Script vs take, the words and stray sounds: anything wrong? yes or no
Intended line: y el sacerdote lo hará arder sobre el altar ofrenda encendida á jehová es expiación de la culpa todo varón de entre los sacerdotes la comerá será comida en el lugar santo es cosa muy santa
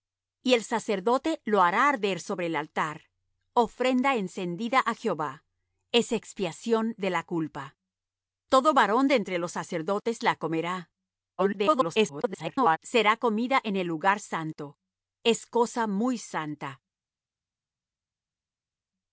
yes